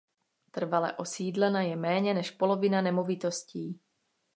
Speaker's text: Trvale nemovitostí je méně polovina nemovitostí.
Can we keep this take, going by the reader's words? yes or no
no